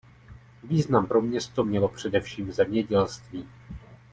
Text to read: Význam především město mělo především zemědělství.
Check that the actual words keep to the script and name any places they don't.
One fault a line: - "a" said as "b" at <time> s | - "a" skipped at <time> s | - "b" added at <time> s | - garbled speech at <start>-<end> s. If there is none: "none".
- "především" said as "pro" at 1.0 s